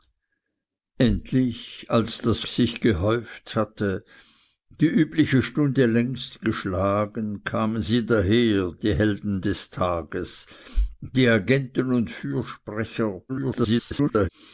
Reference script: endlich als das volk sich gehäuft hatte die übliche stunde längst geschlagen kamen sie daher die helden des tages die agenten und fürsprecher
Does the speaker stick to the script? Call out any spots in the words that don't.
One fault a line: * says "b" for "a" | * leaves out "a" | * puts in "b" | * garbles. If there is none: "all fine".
* leaves out "volk"
* garbles